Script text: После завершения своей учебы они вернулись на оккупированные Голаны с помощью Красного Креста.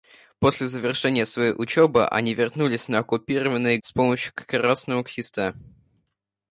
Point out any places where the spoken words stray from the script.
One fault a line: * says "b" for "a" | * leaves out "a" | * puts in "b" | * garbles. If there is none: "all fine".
* leaves out "Голаны"